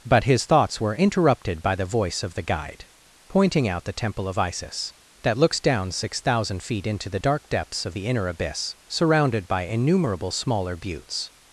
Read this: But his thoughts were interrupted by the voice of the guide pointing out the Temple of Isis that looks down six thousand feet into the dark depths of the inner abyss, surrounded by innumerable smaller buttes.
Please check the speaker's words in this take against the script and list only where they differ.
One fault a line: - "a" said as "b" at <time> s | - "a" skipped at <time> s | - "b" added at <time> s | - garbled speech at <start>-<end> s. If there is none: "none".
none